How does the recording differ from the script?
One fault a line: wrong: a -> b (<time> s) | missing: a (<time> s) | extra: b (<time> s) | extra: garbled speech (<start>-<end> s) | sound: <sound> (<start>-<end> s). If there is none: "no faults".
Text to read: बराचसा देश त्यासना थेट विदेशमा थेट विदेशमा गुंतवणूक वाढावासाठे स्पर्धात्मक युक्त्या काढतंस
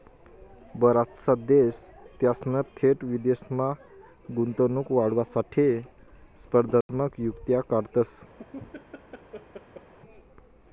missing: थेट विदेशमा (3.7 s)
sound: dropout (6.8-6.9 s)
sound: laugh (8.4-9.9 s)